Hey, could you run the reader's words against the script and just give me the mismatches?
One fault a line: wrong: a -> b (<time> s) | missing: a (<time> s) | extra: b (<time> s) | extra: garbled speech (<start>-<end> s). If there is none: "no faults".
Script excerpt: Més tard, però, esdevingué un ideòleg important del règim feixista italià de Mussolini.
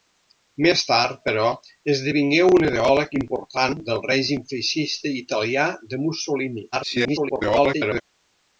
extra: garbled speech (6.7-8.0 s)